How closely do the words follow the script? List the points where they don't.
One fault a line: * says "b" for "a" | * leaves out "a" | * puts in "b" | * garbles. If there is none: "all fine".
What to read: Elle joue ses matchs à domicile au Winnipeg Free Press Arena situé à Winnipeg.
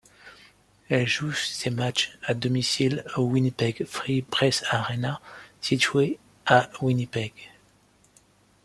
all fine